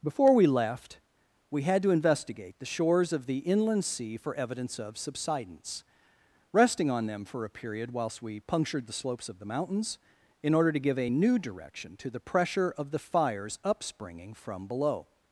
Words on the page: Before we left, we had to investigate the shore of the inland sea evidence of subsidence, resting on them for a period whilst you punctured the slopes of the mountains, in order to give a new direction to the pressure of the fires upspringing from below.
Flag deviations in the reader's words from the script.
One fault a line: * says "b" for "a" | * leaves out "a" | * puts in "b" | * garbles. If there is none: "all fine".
* says "shores" for "shore"
* puts in "for"
* says "we" for "you"